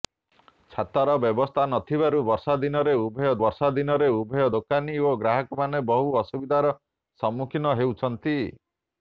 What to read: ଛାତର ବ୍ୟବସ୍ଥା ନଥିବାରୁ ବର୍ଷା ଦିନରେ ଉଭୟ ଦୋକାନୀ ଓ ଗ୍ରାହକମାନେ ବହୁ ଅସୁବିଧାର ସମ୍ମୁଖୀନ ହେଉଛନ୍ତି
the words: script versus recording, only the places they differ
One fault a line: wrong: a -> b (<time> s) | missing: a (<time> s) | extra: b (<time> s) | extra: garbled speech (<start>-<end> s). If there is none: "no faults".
extra: ବର୍ଷା ଦିନରେ ଉଭୟ (3.4 s)